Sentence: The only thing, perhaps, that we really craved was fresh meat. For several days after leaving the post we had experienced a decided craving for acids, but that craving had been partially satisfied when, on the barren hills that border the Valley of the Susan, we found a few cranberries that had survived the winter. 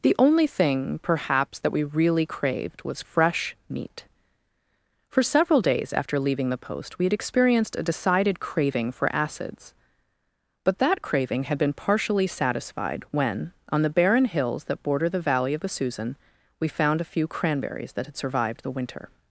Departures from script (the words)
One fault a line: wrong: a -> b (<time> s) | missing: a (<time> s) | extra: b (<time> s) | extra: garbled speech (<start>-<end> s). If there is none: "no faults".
no faults